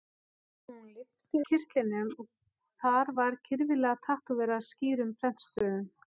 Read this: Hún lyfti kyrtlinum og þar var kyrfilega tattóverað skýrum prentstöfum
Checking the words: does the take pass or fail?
pass